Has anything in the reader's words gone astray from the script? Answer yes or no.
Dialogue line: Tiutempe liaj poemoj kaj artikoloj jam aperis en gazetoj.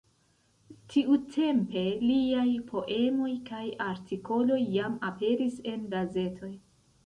no